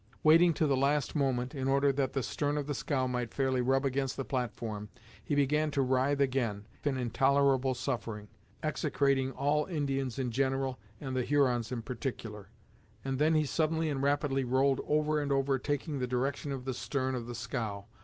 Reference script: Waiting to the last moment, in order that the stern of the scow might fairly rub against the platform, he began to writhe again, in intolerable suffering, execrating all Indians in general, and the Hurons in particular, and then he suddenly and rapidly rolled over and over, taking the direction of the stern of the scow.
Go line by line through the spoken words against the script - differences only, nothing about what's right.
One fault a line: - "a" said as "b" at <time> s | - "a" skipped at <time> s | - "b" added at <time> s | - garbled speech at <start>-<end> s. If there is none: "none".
none